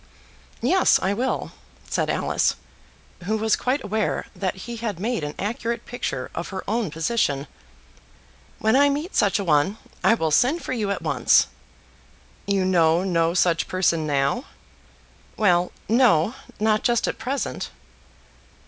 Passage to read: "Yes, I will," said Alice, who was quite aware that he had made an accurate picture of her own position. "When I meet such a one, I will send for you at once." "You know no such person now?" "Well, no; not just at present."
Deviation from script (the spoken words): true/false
false